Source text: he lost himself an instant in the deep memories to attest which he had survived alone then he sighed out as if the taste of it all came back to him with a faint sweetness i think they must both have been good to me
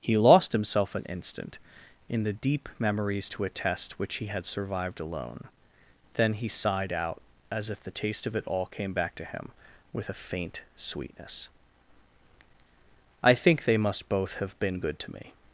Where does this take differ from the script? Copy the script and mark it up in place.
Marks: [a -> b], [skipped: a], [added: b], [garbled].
he lost himself an instant in the deep memories to attest which he had survived alone then he sighed out as if the taste of it all came back to him with a faint sweetness i think they must both have been good to me